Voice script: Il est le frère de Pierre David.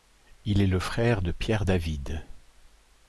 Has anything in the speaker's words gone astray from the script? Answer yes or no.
no